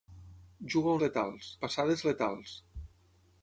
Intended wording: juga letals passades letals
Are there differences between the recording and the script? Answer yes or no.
no